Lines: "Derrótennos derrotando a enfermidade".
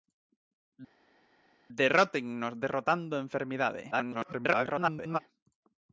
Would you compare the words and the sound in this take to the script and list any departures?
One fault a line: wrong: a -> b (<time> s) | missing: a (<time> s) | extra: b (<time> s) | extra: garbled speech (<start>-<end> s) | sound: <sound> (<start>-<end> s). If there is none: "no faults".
extra: garbled speech (3.9-5.2 s)